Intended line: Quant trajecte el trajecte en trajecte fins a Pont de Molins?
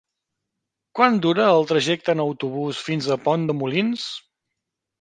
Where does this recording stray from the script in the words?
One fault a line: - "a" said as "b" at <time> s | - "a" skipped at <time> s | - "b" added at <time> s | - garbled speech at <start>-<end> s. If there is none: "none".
- "trajecte" said as "dura" at 1.2 s
- "trajecte" said as "autobús" at 2.3 s